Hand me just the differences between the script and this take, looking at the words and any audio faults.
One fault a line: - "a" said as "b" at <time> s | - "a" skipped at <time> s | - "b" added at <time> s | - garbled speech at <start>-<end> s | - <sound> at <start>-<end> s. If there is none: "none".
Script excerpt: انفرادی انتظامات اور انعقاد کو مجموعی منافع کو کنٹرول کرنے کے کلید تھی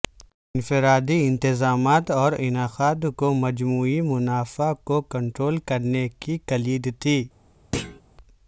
- "کے" said as "کی" at 6.2 s
- thud at 7.7-8.0 s